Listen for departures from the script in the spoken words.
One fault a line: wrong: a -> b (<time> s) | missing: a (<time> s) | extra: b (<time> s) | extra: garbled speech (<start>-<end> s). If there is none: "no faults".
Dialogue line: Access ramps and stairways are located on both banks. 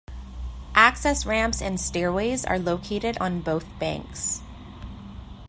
no faults